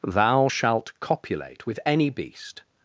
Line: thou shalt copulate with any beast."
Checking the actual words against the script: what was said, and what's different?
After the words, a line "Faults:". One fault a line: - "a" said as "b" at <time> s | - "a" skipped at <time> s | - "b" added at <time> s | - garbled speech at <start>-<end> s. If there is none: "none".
thou shalt copulate with any beast."
Faults:
none